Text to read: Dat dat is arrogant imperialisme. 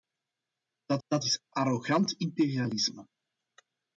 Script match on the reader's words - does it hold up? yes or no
yes